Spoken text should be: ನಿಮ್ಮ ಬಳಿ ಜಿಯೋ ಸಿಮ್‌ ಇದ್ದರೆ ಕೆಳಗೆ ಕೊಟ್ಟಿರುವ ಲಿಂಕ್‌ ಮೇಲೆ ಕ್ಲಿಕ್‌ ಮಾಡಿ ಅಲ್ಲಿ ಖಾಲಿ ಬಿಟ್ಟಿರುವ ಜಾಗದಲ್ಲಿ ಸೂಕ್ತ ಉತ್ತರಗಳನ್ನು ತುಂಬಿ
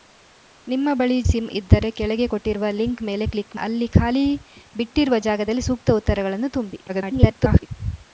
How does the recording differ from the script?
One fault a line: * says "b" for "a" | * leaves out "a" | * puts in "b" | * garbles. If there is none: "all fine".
* leaves out "ಜಿಯೋ"
* leaves out "ಮಾಡಿ"
* garbles